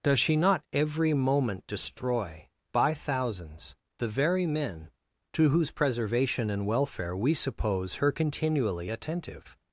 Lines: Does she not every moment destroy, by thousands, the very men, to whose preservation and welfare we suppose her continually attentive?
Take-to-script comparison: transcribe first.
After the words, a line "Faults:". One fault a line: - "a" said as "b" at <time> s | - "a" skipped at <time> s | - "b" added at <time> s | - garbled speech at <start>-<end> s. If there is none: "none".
Does she not every moment destroy, by thousands, the very men, to whose preservation and welfare we suppose her continually attentive?
Faults:
none